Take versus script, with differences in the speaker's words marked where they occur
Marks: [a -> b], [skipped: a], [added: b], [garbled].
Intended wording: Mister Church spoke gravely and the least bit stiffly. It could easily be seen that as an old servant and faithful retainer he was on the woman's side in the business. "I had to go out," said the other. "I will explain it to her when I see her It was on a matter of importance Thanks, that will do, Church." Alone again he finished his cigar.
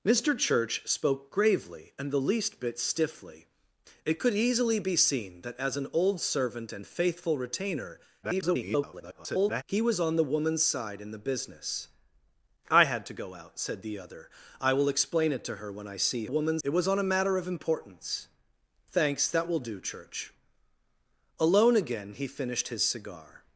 Mister Church spoke gravely and the least bit stiffly. It could easily be seen that as an old servant and faithful retainer [garbled] he was on the woman's side in the business. "I had to go out," said the other. "I will explain it to her when I see [her -> woman's] It was on a matter of importance Thanks, that will do, Church." Alone again he finished his cigar.